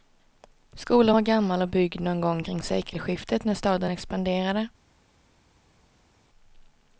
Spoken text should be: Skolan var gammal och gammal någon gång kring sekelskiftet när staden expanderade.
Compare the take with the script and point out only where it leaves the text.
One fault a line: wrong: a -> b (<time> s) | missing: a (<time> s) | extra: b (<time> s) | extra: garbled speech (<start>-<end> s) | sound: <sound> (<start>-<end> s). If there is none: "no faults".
wrong: gammal -> byggd (1.7 s)